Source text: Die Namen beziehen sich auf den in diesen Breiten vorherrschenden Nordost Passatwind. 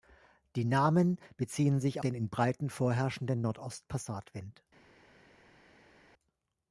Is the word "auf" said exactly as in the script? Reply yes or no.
no